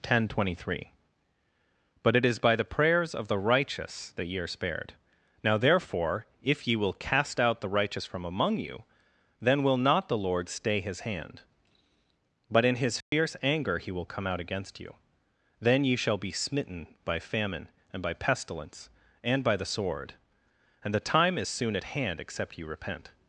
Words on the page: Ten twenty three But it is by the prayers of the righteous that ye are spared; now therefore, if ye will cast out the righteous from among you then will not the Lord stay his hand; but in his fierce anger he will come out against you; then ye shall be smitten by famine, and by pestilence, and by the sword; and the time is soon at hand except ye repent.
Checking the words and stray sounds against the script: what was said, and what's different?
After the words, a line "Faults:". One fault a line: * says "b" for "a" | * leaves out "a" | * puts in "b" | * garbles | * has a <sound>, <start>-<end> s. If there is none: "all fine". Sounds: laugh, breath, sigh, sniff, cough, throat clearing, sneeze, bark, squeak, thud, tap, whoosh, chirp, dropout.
Ten twenty three But it is by the prayers of the righteous that ye are spared; now therefore, if ye will cast out the righteous from among you then will not the Lord stay his hand; but in his fierce anger he will come out against you; then ye shall be smitten by famine, and by pestilence, and by the sword; and the time is soon at hand except ye repent.
Faults:
* has a dropout, 13.0-13.1 s